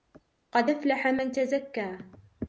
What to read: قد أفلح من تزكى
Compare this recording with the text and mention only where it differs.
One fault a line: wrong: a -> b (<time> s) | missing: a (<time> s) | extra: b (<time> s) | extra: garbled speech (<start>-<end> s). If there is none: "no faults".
no faults